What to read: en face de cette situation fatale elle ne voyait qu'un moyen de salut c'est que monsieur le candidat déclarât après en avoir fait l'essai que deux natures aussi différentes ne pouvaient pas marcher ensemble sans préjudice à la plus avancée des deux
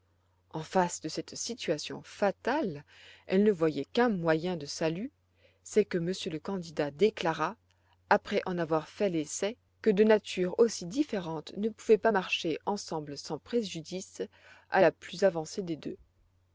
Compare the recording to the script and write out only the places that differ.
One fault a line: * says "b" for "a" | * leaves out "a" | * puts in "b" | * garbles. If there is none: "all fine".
all fine